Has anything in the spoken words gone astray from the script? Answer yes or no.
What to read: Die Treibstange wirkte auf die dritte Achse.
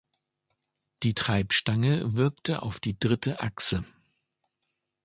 no